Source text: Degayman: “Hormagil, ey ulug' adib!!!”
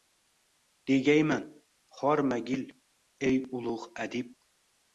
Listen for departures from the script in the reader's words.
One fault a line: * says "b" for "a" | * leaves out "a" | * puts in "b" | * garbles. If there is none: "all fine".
all fine